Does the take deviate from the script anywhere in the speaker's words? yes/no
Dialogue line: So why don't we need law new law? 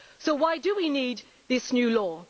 yes